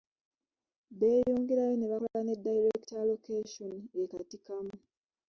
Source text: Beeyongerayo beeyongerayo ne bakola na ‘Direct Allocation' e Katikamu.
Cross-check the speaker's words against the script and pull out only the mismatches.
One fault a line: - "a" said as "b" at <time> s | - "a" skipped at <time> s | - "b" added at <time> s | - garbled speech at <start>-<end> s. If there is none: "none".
- "beeyongerayo" skipped at 1.7 s
- "na" said as "ne" at 2.2 s